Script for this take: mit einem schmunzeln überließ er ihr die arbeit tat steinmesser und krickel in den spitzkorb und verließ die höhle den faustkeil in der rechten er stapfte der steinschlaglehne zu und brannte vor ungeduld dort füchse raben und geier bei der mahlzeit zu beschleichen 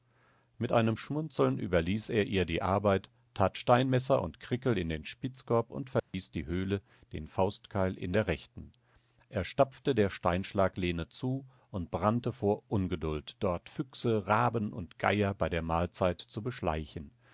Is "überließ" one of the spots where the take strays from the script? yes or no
no